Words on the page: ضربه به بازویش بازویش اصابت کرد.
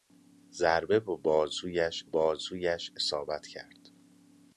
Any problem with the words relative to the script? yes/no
no